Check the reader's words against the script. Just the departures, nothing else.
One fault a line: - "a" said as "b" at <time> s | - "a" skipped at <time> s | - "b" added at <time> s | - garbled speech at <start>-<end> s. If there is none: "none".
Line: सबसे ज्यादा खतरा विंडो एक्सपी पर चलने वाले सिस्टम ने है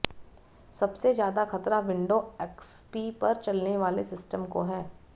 - "ने" said as "को" at 4.5 s